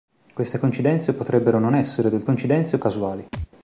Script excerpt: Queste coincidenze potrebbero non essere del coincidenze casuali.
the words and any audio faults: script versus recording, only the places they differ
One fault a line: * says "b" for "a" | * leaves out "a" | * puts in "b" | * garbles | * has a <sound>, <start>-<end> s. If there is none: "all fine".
* has a thud, 3.3-3.5 s